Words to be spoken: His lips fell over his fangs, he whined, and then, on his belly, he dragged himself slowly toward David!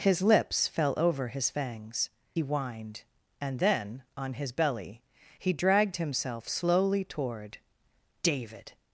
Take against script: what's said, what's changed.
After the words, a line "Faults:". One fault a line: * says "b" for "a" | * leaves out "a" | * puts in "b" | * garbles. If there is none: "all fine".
His lips fell over his fangs, whined, and then, on his belly, he dragged himself slowly toward David!
Faults:
* leaves out "he"